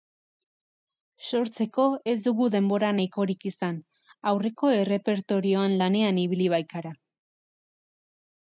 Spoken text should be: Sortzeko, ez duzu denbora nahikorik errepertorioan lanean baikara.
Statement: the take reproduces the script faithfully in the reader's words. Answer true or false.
false